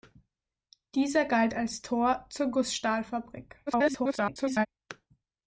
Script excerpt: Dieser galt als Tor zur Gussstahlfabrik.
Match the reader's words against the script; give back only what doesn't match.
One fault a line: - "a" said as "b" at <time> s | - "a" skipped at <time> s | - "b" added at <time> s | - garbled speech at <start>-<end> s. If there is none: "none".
- garbled speech at 3.7-4.7 s